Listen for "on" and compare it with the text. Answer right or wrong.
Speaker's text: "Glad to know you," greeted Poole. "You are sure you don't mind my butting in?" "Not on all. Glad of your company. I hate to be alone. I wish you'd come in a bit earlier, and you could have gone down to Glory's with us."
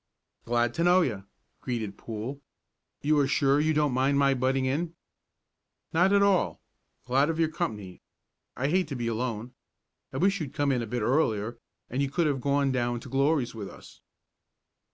wrong